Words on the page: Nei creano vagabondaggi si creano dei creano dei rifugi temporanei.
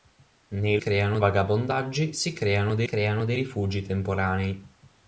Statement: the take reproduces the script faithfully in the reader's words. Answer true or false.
true